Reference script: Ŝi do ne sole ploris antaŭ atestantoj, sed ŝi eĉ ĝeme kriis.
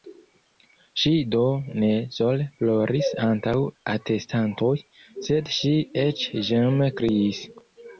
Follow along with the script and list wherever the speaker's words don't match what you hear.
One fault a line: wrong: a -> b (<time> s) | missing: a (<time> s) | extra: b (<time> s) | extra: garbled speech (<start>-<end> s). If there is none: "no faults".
no faults